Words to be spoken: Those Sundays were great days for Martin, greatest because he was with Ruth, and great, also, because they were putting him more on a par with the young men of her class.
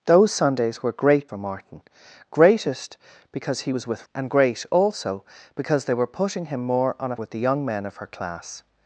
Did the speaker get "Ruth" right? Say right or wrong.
wrong